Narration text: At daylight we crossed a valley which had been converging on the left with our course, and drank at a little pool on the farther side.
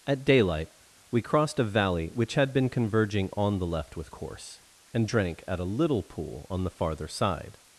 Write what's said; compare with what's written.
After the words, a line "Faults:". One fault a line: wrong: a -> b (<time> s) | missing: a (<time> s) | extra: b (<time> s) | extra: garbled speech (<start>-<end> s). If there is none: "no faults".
At daylight we crossed a valley which had been converging on the left with course, and drank at a little pool on the farther side.
Faults:
missing: our (4.1 s)